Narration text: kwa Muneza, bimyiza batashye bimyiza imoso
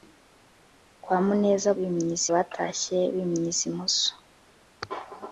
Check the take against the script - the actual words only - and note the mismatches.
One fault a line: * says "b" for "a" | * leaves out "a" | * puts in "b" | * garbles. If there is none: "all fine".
all fine